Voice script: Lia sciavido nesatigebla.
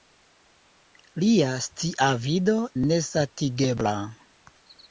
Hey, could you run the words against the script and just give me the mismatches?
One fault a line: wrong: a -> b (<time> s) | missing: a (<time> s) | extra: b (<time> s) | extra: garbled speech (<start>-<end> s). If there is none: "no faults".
no faults